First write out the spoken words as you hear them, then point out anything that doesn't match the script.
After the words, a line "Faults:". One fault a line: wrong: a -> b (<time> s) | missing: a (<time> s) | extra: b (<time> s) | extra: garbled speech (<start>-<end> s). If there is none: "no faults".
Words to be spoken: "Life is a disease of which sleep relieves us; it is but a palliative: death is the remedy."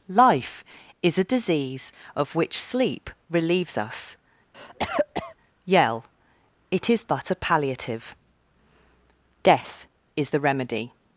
"Life is a disease of which sleep relieves us; yell it is but a palliative: death is the remedy."
Faults:
extra: yell (5.6 s)